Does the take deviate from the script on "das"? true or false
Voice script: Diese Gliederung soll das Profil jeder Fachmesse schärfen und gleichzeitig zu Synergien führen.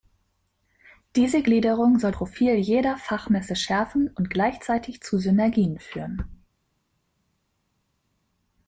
true